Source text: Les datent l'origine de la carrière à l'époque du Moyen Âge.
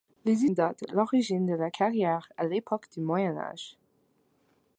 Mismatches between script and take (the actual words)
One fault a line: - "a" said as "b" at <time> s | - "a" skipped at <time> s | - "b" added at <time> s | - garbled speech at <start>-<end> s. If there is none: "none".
none